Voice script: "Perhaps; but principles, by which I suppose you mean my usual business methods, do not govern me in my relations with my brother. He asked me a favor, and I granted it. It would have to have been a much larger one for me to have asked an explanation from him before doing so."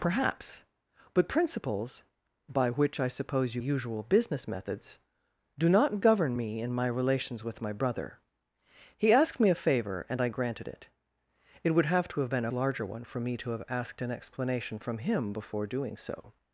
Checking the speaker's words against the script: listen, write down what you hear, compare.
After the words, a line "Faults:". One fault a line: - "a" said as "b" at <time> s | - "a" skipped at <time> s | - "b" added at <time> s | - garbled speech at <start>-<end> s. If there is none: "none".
"Perhaps; but principles, by which I suppose you usual business methods, do not govern me in my relations with my brother. He asked me a favor, and I granted it. It would have to have been a larger one for me to have asked an explanation from him before doing so."
Faults:
- "mean my" skipped at 3.6 s
- "much" skipped at 12.5 s